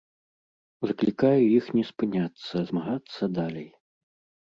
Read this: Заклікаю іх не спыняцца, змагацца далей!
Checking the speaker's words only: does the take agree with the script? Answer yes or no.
yes